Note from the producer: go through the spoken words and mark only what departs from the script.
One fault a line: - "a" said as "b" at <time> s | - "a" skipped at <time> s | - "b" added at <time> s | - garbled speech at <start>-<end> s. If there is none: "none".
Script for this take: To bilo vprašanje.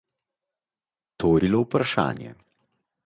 none